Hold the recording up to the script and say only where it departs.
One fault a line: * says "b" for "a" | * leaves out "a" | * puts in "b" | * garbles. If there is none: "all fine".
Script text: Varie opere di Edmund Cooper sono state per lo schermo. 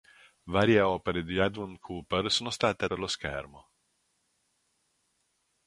all fine